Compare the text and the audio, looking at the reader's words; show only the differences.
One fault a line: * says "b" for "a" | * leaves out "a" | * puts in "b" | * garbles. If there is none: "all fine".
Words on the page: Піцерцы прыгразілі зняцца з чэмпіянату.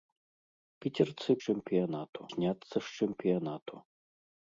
* says "чэмпіянату" for "прыгразілі"